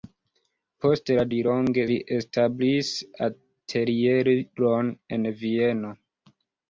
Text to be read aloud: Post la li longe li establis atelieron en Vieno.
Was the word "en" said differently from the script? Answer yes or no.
no